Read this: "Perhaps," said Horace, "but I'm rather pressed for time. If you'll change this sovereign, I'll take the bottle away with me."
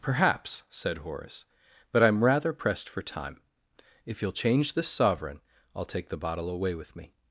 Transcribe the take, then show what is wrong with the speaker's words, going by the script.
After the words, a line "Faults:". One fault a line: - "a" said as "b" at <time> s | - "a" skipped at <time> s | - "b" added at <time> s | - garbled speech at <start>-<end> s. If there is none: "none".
"Perhaps," said Horace, "but I'm rather pressed for time. If you'll change this sovereign, I'll take the bottle away with me."
Faults:
none